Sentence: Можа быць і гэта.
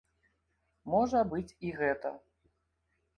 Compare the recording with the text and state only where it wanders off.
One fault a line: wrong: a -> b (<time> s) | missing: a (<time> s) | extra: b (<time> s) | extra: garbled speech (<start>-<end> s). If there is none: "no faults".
no faults